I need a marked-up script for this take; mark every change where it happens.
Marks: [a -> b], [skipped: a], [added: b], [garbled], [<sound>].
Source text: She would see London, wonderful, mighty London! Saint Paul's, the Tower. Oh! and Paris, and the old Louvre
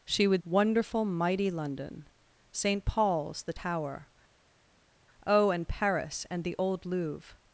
She would [skipped: see London,] wonderful, mighty London! Saint Paul's, the Tower. Oh! and Paris, and the old Louvre